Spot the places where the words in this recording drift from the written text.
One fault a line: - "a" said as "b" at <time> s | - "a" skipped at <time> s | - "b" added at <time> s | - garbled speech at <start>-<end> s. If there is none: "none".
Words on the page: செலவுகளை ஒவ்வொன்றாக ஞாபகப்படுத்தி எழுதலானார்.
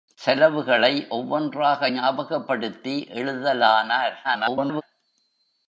- garbled speech at 4.2-4.8 s